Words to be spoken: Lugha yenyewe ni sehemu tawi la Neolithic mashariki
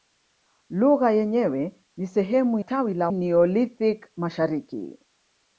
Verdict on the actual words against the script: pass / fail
pass